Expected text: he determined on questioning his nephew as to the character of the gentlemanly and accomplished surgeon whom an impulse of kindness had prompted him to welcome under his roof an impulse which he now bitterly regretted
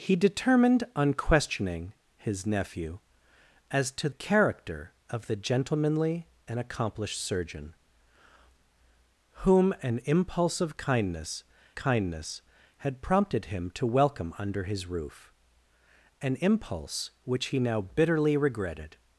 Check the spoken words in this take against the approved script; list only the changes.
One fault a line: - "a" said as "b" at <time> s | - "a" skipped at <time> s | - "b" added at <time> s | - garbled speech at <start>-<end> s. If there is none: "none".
- "the" skipped at 4.1 s
- "kindness" added at 11.7 s